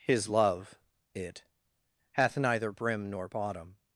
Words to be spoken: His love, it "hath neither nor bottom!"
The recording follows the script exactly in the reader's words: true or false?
false